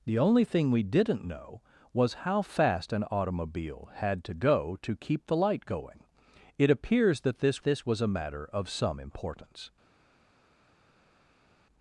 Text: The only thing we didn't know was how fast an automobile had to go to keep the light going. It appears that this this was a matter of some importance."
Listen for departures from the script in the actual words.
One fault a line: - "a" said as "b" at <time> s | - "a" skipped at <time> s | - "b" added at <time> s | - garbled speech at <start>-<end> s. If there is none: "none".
none